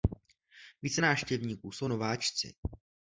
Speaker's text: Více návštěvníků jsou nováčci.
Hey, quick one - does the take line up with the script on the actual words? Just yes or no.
yes